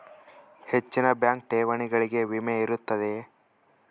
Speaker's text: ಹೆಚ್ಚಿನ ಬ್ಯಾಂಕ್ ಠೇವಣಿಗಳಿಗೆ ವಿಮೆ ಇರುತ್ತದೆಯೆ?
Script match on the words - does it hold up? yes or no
yes